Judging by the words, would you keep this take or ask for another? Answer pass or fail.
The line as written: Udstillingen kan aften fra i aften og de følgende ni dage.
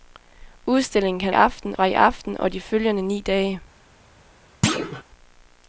pass